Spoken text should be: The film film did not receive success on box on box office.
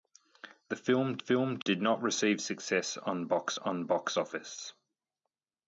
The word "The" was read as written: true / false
true